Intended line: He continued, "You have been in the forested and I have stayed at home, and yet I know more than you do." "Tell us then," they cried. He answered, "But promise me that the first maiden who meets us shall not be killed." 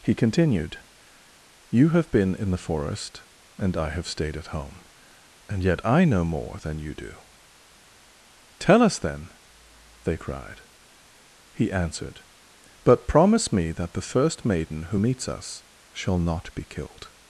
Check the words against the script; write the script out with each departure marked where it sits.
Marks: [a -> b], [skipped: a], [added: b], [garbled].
He continued, "You have been in the [forested -> forest] and I have stayed at home, and yet I know more than you do." "Tell us then," they cried. He answered, "But promise me that the first maiden who meets us shall not be killed."